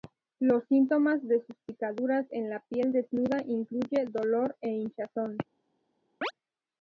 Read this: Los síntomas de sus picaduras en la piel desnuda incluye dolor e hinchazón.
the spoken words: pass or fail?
pass